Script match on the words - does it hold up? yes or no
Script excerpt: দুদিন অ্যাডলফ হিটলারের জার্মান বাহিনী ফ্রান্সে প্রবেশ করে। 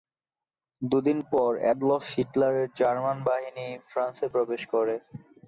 no